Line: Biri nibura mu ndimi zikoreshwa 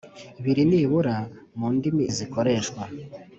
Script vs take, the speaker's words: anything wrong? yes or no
no